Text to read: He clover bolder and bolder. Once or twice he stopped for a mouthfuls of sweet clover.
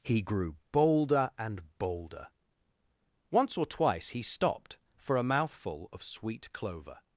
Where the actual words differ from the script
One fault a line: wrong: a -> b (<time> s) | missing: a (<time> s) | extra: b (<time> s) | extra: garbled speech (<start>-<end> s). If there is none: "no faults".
wrong: clover -> grew (0.2 s)
wrong: mouthfuls -> mouthful (5.2 s)